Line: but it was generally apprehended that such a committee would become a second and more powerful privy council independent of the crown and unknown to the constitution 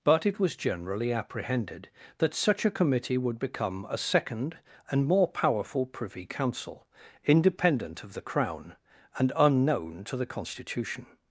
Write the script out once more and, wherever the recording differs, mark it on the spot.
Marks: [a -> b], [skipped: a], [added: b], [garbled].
but it was generally apprehended that such a committee would become a second and more powerful privy council independent of the crown and unknown to the constitution